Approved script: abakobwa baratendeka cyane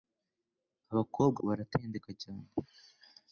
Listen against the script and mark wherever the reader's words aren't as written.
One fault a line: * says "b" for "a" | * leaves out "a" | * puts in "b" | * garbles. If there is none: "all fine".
all fine